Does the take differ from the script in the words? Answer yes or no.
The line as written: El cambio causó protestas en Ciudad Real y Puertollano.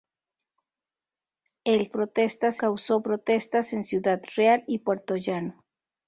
yes